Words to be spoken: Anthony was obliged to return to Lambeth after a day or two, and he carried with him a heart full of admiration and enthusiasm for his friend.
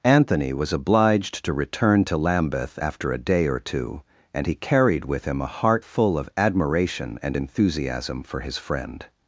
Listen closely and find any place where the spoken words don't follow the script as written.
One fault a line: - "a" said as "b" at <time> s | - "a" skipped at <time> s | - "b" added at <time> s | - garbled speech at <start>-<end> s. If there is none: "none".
none